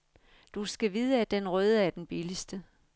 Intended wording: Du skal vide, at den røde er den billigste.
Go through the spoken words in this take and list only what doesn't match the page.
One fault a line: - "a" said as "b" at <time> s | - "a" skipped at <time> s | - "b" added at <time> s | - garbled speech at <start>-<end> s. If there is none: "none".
none